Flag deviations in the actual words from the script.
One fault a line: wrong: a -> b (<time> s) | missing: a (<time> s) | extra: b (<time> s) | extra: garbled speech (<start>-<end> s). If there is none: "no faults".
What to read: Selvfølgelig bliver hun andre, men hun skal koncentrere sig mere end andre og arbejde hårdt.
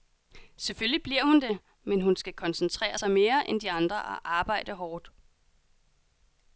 wrong: andre -> det (1.4 s)
extra: de (3.6 s)